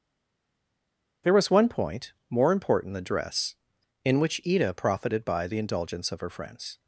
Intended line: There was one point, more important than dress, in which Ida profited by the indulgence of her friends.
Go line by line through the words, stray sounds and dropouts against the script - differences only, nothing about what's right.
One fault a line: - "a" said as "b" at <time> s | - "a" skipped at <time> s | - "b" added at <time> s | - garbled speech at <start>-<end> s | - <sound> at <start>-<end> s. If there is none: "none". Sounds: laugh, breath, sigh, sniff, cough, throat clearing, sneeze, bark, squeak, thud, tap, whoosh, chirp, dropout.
none